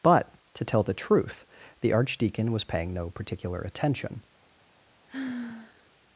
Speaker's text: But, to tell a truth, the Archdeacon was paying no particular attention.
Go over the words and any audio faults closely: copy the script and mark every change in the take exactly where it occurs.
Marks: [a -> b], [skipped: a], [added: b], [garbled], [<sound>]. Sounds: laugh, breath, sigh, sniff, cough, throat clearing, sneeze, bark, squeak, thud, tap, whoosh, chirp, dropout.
But, to tell [a -> the] truth, the Archdeacon was paying no particular attention. [sigh]